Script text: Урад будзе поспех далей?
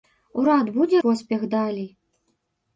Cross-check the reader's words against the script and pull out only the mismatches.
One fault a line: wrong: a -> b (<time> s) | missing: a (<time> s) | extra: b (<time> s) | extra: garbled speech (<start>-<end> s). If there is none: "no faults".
no faults